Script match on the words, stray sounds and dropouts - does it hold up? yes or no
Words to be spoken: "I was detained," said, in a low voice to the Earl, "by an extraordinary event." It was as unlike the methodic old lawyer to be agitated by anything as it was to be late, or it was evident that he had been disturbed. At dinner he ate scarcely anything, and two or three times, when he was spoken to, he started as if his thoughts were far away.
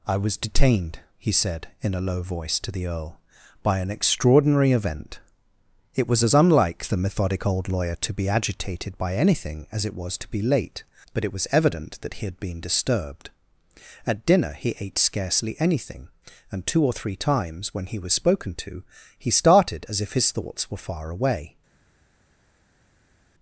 no